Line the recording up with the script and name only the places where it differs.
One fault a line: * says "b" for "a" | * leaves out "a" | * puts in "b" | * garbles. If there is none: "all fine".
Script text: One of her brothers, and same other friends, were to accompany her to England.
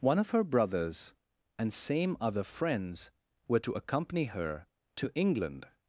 all fine